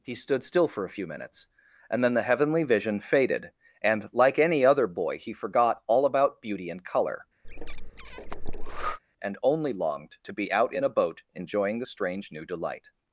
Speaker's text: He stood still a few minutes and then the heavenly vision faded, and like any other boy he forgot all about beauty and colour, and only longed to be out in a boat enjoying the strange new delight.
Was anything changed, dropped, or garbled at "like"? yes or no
no